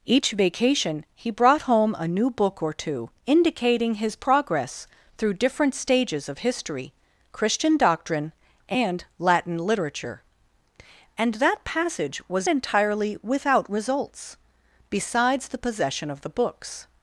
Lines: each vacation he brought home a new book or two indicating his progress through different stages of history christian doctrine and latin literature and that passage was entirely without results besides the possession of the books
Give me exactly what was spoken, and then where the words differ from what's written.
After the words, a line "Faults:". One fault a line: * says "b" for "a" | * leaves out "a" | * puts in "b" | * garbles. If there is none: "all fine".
each vacation he brought home a new book or two indicating his progress through different stages of history christian doctrine and latin literature and that passage was entirely without results besides the possession of the books
Faults:
all fine